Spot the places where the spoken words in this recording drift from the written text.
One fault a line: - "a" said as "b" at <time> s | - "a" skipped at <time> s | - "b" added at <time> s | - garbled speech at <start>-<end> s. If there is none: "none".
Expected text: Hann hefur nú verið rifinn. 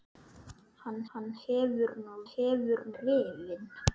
- "hann" added at 1.1 s
- "verið" said as "hefur" at 2.3 s